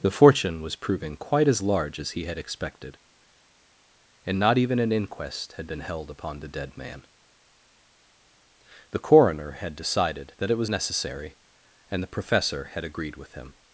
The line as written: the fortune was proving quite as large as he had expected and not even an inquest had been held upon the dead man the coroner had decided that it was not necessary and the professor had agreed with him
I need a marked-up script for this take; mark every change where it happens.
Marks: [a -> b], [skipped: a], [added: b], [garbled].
the fortune was proving quite as large as he had expected and not even an inquest had been held upon the dead man the coroner had decided that it was [skipped: not] necessary and the professor had agreed with him